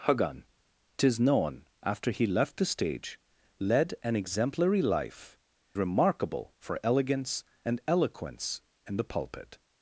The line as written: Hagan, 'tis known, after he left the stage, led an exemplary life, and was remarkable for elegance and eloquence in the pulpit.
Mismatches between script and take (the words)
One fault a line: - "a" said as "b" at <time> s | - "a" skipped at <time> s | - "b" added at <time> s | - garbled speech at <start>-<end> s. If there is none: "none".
- "and was" skipped at 5.4 s